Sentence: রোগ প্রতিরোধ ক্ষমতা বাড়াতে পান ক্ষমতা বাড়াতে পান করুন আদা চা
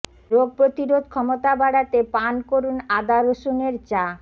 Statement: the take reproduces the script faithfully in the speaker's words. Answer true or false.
false